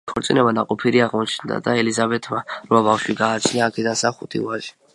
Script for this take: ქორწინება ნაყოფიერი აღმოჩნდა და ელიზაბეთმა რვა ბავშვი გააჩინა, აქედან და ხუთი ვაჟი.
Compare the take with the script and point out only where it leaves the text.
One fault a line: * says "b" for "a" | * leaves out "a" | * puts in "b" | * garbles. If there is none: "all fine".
all fine